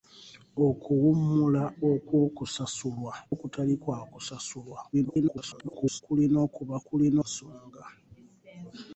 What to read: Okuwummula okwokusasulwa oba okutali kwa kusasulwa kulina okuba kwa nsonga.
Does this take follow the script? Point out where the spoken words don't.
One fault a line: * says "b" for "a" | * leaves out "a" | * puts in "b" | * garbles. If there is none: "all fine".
* leaves out "oba"
* garbles
* says "kulina" for "kwa"